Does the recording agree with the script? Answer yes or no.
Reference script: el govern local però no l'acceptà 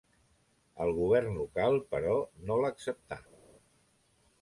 yes